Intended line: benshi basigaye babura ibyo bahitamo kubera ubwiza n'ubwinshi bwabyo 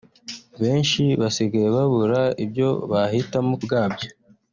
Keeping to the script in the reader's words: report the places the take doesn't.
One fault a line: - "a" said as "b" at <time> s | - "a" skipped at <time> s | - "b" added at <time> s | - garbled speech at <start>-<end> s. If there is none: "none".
- "kubera ubwiza n'ubwinshi" skipped at 3.5 s